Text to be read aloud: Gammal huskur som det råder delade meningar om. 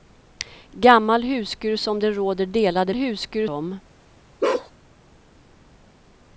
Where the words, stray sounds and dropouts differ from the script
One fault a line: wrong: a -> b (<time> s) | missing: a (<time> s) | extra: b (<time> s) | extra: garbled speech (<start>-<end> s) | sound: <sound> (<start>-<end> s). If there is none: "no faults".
wrong: meningar -> huskur (2.9 s)
sound: bark (4.4-4.7 s)